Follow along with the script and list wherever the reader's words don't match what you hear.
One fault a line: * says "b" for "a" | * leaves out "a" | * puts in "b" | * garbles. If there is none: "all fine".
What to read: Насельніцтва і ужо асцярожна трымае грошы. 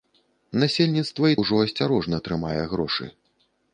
all fine